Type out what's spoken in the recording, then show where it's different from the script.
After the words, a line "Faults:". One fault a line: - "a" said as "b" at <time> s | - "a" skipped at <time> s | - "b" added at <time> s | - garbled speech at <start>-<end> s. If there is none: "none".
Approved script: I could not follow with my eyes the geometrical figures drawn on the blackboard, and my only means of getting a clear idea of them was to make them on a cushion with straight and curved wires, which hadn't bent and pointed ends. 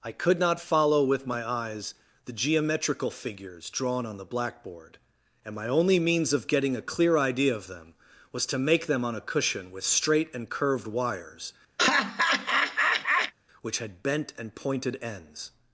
I could not follow with my eyes the geometrical figures drawn on the blackboard, and my only means of getting a clear idea of them was to make them on a cushion with straight and curved wires, which had bent and pointed ends.
Faults:
- "hadn't" said as "had" at 13.8 s